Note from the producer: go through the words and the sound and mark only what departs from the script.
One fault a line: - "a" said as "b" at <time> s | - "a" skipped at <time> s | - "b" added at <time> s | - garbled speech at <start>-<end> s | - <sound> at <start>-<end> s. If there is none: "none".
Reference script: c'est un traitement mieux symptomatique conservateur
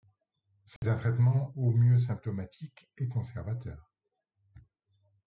- dropout at 0.8-0.8 s
- "au" added at 1.6 s
- "et" added at 3.0 s